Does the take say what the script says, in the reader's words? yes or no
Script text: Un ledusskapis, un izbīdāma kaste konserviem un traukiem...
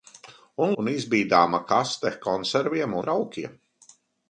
no